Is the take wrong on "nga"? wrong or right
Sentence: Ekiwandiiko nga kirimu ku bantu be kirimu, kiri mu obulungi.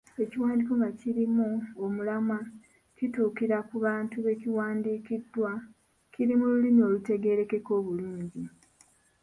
right